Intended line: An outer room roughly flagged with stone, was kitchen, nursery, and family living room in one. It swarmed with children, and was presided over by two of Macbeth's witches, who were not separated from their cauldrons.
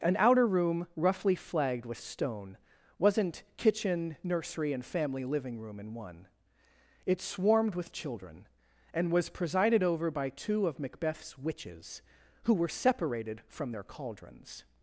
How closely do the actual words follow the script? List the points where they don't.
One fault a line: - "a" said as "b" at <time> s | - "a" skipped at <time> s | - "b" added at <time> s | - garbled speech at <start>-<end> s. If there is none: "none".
- "was" said as "wasn't" at 3.0 s
- "not" skipped at 12.7 s